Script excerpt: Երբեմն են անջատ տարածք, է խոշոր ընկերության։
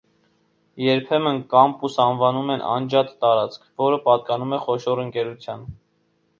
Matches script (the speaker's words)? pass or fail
fail